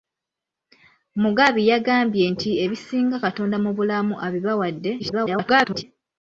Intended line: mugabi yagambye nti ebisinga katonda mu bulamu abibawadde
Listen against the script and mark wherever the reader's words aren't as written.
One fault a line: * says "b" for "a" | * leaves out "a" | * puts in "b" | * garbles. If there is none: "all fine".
* garbles